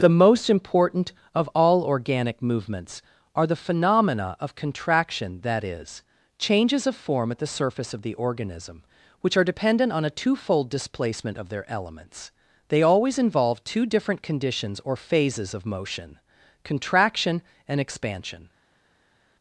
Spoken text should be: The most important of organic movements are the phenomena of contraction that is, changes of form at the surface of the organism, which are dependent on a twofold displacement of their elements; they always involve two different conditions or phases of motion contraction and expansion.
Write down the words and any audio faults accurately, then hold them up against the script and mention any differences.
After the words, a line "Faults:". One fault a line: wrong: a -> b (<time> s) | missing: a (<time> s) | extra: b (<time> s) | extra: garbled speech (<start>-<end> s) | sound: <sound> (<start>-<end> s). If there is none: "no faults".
The most important of all organic movements are the phenomena of contraction that is, changes of form at the surface of the organism, which are dependent on a twofold displacement of their elements; they always involve two different conditions or phases of motion contraction and expansion.
Faults:
extra: all (1.5 s)